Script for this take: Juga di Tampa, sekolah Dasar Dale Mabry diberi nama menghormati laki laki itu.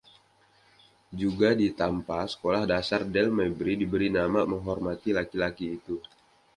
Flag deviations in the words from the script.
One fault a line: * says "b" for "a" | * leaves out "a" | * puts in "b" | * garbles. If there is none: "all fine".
all fine